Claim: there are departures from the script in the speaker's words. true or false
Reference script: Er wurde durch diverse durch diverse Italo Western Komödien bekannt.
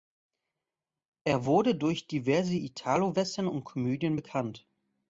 true